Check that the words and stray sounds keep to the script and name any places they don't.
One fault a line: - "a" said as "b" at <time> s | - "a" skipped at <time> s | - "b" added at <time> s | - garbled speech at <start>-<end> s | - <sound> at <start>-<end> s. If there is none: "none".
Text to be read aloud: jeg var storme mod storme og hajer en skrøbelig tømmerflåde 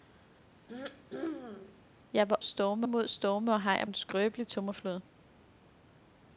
- throat clearing at 0.7-1.8 s